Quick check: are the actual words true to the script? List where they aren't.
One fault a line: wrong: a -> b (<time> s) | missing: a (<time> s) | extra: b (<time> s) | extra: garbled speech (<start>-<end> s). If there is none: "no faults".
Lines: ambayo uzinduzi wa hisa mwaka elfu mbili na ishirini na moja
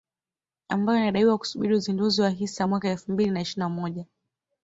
extra: inadaiwa kusubiri (1.0 s)